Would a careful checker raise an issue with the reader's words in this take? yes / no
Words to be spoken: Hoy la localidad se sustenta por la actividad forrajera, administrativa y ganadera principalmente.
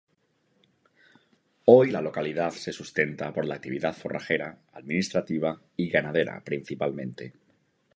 no